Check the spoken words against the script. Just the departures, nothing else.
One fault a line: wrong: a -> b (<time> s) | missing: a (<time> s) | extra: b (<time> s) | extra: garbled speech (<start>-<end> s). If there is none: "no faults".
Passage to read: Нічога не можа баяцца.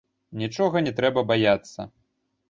wrong: можа -> трэба (1.0 s)